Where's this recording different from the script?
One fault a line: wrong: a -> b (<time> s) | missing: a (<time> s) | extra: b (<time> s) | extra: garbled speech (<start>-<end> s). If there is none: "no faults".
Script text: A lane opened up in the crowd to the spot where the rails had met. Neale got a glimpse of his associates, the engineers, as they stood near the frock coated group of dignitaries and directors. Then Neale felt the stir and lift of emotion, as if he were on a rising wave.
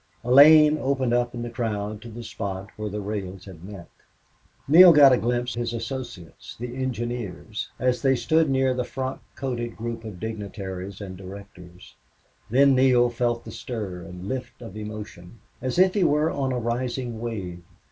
missing: of (5.6 s)